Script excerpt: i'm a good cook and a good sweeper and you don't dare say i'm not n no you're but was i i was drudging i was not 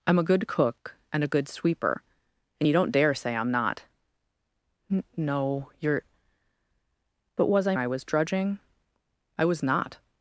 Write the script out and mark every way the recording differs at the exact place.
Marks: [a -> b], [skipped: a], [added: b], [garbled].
i'm a good cook and a good sweeper and you don't dare say i'm not n no you're but was i i was drudging i was not